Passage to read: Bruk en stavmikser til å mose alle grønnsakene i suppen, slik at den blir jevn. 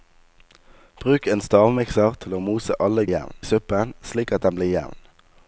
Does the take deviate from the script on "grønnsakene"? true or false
true